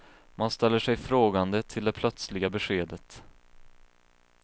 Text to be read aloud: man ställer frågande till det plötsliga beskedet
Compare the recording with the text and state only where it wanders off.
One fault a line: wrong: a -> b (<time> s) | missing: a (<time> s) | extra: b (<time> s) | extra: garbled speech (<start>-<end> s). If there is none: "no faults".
extra: sig (0.8 s)